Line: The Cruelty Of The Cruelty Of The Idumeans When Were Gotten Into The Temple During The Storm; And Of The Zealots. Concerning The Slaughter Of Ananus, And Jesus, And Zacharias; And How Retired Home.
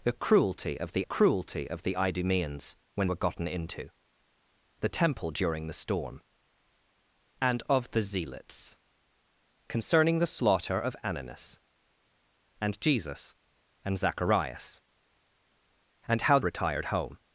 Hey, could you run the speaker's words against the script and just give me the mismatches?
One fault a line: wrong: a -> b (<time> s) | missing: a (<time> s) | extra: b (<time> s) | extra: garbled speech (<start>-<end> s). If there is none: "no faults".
no faults